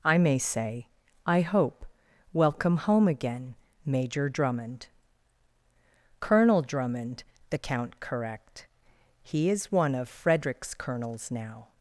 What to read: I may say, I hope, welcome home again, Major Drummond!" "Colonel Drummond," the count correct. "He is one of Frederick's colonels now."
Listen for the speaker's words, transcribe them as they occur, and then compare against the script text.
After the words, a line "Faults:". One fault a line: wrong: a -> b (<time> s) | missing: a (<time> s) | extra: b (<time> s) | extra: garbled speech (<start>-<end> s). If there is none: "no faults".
I may say, I hope, welcome home again, Major Drummond!" "Colonel Drummond," the count correct. "He is one of Frederick's colonels now."
Faults:
no faults